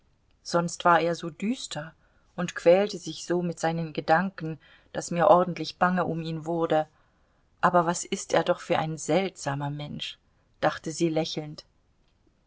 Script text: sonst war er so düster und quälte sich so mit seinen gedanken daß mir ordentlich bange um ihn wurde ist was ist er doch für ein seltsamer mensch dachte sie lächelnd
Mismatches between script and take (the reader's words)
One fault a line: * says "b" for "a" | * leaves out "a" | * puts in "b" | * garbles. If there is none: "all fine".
* says "aber" for "ist"